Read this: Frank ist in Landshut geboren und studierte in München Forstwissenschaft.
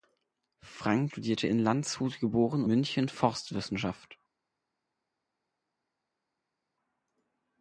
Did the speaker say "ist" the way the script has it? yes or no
no